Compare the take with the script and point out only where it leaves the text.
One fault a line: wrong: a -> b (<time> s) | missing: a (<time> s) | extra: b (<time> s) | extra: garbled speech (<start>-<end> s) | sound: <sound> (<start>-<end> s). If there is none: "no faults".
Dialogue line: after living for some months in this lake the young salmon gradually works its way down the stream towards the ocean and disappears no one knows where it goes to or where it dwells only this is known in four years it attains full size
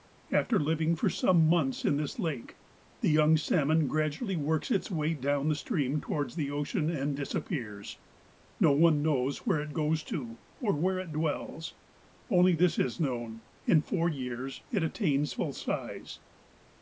no faults